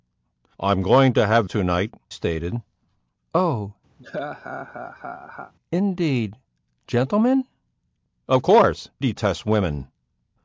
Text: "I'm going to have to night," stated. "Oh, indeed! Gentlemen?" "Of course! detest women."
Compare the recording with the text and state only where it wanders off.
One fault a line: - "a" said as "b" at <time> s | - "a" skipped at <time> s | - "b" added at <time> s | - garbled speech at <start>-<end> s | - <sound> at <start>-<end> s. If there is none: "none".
- laugh at 4.0-5.5 s